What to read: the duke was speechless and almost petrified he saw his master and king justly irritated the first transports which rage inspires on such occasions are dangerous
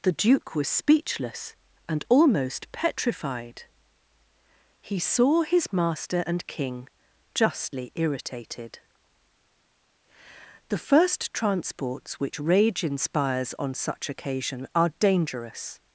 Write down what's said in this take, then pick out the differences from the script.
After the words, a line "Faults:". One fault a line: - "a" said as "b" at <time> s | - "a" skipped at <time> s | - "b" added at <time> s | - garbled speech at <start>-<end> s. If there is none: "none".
the duke was speechless and almost petrified he saw his master and king justly irritated the first transports which rage inspires on such occasion are dangerous
Faults:
- "occasions" said as "occasion" at 14.1 s